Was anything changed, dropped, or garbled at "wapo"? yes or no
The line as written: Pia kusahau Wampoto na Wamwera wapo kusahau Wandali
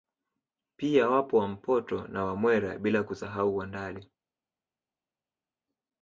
yes